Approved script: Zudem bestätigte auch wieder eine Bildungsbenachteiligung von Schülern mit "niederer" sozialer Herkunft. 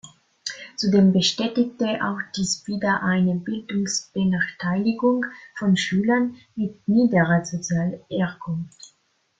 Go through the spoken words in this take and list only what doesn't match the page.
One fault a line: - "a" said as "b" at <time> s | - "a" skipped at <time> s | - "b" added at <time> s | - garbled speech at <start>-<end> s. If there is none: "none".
- "dies" added at 2.4 s